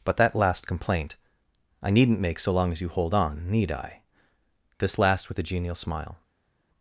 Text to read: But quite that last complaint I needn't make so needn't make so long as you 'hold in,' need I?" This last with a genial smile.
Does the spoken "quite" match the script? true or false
false